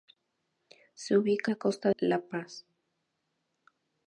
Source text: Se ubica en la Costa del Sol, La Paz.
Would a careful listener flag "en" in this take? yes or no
yes